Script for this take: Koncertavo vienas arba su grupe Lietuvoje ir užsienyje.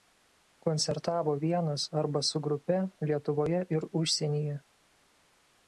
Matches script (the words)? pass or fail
pass